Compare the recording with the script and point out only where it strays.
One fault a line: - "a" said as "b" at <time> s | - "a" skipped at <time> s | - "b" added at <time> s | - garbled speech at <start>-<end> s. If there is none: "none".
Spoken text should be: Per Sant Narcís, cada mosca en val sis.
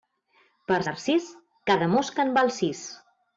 - "Sant" skipped at 0.8 s